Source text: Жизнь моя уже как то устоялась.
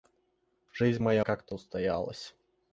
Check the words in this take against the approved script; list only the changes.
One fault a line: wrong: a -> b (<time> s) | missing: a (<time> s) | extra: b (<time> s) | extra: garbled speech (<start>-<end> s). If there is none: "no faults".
missing: уже (1.3 s)